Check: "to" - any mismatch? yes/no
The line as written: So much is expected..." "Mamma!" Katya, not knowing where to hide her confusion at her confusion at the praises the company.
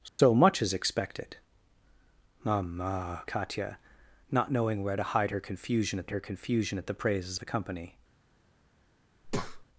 no